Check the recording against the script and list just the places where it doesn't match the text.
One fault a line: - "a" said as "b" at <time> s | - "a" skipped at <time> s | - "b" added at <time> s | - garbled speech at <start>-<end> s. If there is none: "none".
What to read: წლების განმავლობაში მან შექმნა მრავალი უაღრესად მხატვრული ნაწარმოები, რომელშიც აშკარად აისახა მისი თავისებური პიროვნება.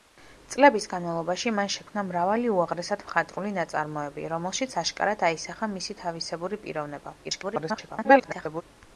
- garbled speech at 7.2-8.6 s